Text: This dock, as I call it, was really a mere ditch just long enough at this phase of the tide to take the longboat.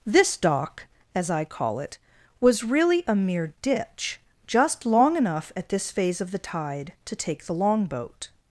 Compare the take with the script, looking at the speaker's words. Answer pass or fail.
pass